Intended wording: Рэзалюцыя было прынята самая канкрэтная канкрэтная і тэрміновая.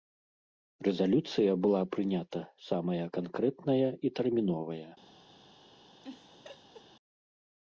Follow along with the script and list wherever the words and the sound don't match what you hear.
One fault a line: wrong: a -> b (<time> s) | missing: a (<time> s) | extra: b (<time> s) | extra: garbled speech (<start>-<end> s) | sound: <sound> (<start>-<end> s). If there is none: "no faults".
wrong: было -> была (1.6 s)
missing: канкрэтная (3.9 s)
sound: laugh (6.0-6.9 s)